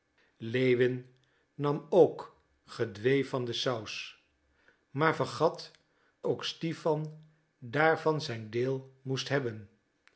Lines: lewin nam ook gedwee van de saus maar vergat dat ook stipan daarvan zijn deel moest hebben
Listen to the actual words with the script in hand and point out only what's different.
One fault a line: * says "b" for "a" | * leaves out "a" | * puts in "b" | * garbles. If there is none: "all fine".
* leaves out "dat"